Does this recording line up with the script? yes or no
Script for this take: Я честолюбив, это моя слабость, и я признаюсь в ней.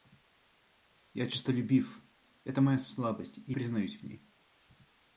no